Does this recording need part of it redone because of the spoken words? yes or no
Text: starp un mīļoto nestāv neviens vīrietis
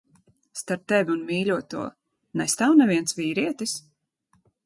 yes